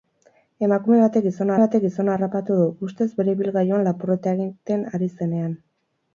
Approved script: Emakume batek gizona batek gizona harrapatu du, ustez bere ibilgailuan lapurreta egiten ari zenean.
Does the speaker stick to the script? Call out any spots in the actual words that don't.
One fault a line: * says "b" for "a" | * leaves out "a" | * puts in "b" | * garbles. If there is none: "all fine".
all fine